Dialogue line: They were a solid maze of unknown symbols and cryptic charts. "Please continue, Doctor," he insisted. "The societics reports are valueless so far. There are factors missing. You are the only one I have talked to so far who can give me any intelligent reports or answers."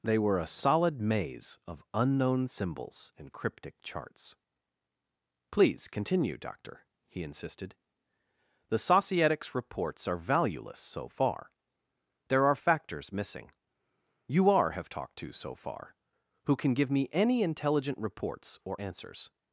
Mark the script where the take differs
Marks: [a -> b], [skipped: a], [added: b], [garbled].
They were a solid maze of unknown symbols and cryptic charts. "Please continue, Doctor," he insisted. "The societics reports are valueless so far. There are factors missing. You are [skipped: the only one I] have talked to so far who can give me any intelligent reports or answers."